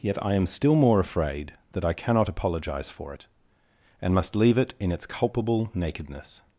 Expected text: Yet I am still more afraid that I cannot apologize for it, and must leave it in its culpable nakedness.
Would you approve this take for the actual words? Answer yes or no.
yes